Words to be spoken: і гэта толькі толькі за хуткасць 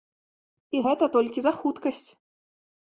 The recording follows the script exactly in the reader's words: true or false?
false